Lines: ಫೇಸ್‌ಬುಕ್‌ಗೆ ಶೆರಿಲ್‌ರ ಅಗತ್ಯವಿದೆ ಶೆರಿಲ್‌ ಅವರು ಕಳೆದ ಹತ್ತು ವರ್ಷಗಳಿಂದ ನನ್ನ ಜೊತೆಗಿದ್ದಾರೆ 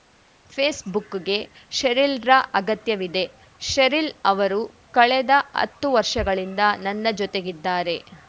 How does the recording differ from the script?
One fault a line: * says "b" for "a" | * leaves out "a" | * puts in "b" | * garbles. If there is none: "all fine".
all fine